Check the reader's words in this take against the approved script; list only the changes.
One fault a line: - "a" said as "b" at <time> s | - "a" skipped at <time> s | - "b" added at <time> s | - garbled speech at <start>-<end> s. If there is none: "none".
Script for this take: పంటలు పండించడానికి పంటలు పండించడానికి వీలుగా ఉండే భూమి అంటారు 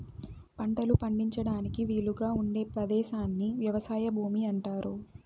- "పంటలు పండించడానికి వీలుగా ఉండే" said as "వీలుగా ఉండే పదేశాన్ని వ్యవసాయ" at 1.9 s